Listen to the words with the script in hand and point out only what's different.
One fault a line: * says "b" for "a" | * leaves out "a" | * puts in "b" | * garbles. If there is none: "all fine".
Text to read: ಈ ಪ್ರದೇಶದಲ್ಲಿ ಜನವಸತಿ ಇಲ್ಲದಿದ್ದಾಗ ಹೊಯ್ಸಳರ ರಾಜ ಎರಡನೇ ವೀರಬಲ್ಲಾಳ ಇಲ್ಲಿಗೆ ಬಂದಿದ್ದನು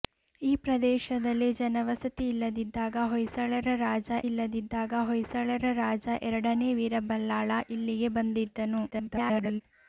* puts in "ಇಲ್ಲದಿದ್ದಾಗ ಹೊಯ್ಸಳರ ರಾಜ"
* garbles